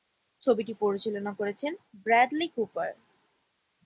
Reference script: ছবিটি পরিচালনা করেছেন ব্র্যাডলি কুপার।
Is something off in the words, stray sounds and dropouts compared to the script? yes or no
no